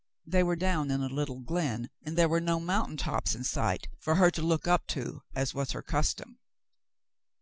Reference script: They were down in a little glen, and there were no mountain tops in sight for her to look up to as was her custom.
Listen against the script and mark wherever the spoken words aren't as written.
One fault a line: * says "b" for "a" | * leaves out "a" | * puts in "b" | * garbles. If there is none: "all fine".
all fine